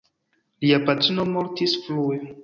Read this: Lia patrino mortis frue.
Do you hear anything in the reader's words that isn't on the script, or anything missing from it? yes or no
no